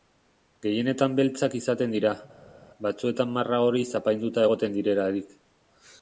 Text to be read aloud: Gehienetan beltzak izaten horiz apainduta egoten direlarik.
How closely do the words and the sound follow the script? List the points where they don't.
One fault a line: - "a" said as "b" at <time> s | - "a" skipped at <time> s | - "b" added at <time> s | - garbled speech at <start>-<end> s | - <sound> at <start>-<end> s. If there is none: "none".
- "dira batzuetan marra" added at 2.0 s